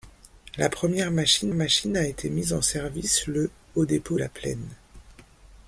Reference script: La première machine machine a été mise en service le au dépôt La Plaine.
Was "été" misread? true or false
false